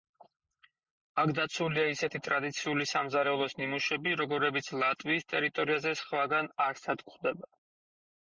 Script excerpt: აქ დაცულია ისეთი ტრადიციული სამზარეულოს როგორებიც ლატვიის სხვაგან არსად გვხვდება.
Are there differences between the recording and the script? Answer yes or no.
yes